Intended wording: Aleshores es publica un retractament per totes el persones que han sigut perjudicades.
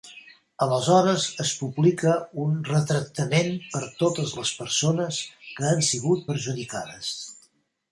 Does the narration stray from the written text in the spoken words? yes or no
yes